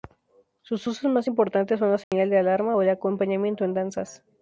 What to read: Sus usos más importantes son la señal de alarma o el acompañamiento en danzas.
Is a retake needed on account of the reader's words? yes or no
no